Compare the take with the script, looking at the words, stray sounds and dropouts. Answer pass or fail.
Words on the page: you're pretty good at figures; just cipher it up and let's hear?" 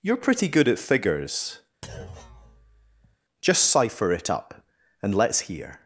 fail